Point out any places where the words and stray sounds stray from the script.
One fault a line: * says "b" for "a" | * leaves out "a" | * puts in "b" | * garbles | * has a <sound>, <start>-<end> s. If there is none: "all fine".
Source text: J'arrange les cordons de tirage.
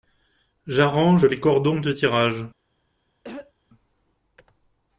* has a throat clearing, 3.2-3.5 s